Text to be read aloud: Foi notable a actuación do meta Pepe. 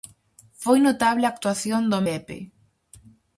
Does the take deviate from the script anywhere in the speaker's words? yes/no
yes